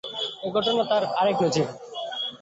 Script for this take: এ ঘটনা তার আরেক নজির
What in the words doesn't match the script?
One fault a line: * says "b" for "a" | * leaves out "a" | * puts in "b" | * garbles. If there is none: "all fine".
all fine